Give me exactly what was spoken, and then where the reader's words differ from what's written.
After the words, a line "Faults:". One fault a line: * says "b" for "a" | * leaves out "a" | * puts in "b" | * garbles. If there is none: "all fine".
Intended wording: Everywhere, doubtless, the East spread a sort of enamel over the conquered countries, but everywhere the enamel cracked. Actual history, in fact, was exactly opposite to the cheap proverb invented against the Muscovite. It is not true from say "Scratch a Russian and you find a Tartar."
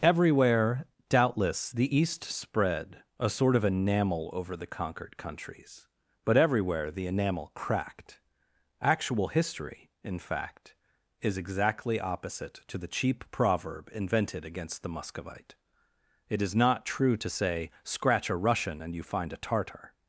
Everywhere, doubtless, the East spread a sort of enamel over the conquered countries, but everywhere the enamel cracked. Actual history, in fact, is exactly opposite to the cheap proverb invented against the Muscovite. It is not true to say "Scratch a Russian and you find a Tartar."
Faults:
* says "is" for "was"
* says "to" for "from"